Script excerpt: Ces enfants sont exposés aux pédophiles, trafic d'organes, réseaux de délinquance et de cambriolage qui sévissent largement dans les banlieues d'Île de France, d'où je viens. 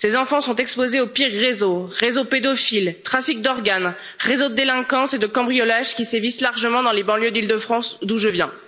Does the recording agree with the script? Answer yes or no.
no